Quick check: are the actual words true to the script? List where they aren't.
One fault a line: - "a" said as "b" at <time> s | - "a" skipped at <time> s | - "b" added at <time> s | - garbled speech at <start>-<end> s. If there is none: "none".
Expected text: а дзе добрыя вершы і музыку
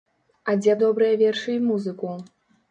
none